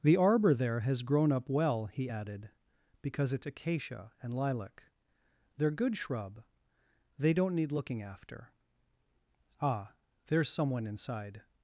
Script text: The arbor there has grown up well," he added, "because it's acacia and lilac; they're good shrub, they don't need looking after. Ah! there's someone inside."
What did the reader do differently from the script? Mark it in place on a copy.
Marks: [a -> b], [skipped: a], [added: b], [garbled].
The arbor there has grown up well," he added, "because it's acacia and lilac; they're good shrub, they don't need looking after. Ah! there's someone inside."